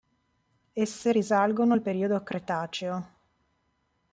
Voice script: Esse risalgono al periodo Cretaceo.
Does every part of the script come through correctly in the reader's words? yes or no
yes